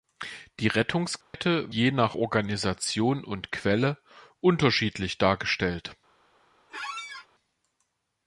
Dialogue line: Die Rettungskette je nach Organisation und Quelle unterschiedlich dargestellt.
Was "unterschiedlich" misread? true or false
false